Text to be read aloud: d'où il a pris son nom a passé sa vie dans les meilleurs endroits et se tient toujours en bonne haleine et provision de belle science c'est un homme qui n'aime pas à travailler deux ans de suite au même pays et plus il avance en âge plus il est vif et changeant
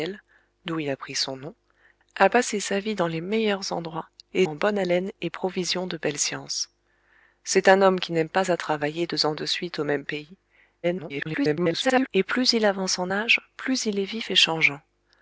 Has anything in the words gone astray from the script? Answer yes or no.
yes